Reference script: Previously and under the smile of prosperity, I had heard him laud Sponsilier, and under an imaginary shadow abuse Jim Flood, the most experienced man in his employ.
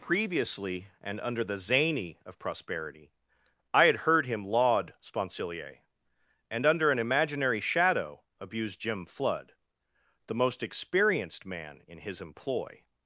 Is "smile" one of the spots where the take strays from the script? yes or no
yes